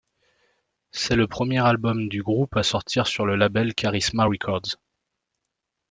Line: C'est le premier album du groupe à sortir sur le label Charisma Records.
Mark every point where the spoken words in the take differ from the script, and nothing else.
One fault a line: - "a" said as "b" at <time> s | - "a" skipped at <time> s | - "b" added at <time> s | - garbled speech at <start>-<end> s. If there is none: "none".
none